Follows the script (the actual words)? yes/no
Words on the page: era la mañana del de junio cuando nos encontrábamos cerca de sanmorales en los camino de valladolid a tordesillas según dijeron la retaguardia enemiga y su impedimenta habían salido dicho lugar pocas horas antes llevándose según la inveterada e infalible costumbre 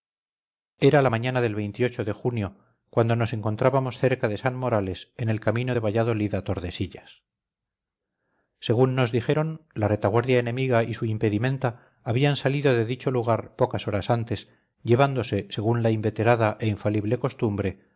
no